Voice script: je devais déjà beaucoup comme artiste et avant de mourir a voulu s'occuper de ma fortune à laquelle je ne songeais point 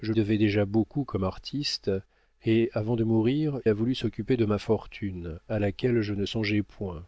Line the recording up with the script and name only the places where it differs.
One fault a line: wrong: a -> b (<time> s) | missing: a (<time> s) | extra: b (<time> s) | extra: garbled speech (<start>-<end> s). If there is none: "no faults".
no faults